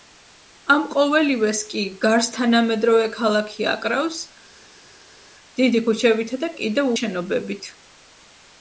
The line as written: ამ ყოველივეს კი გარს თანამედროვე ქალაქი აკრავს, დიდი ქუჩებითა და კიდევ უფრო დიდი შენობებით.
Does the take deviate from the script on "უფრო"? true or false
true